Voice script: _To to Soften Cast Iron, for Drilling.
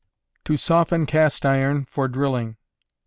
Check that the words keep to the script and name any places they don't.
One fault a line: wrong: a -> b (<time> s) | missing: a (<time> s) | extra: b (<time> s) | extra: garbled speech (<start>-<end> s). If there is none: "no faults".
missing: to (0.6 s)